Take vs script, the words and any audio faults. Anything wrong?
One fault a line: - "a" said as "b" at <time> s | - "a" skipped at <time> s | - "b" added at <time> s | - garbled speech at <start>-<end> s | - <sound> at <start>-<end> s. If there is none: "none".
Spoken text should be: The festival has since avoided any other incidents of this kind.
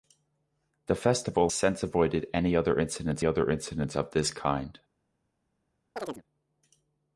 - "has" skipped at 1.5 s
- "other incidents" added at 3.2 s
- chirp at 6.0-6.2 s